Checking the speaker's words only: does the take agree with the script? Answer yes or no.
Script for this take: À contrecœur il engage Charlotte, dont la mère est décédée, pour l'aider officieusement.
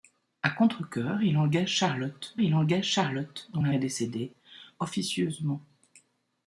no